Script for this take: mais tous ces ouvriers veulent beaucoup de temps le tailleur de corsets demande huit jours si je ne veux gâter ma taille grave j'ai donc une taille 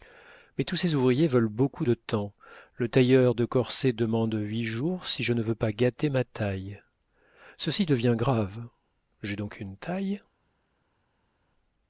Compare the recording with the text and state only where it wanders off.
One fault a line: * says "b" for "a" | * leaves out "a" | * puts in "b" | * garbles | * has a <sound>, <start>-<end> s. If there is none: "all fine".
* puts in "pas"
* puts in "ceci devient"